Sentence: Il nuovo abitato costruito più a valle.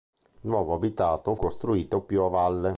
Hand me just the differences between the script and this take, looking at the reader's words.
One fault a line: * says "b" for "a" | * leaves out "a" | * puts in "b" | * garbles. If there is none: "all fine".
all fine